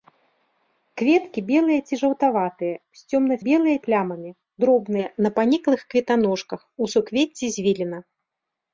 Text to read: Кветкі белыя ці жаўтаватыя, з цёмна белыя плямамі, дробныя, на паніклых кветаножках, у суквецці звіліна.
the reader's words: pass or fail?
pass